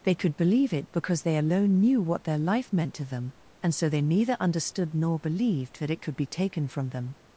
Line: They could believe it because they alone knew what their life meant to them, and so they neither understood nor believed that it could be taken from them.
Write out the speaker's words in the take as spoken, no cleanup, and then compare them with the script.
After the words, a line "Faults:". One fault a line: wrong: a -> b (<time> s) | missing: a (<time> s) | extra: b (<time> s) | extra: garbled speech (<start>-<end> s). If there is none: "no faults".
They could believe it because they alone knew what their life meant to them, and so they neither understood nor believed that it could be taken from them.
Faults:
no faults